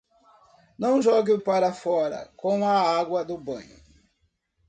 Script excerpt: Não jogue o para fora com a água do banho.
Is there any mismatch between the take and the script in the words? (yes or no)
no